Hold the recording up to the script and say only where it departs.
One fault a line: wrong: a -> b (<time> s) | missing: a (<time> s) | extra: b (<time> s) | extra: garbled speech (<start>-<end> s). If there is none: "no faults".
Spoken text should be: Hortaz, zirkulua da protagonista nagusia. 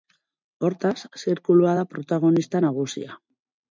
no faults